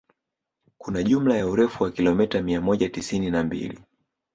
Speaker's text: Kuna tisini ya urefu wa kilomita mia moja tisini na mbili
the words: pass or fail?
fail